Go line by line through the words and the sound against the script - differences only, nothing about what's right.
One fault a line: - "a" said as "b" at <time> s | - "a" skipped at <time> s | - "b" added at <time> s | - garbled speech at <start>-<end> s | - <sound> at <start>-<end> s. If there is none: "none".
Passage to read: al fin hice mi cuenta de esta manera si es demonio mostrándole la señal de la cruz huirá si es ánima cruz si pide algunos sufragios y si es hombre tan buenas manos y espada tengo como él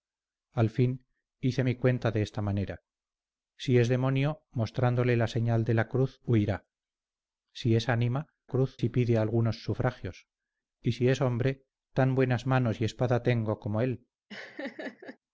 - laugh at 14.3-15.2 s